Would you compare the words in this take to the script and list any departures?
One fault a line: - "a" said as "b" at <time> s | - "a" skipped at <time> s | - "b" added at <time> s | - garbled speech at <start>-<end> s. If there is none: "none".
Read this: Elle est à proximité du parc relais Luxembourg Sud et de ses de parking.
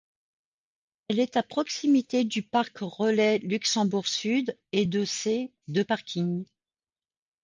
none